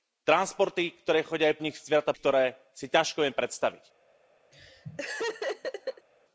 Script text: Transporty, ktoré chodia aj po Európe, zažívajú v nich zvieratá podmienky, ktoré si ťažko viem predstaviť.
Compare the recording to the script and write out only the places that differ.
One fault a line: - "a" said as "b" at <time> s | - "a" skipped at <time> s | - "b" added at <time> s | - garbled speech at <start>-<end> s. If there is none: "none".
- "po Európe zažívajú" skipped at 1.6 s
- "podmienky" skipped at 2.1 s